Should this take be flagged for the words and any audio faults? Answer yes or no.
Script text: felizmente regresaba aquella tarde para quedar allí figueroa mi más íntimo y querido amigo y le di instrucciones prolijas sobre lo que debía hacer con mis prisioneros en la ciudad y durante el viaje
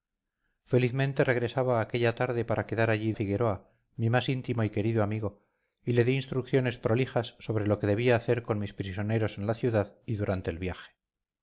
no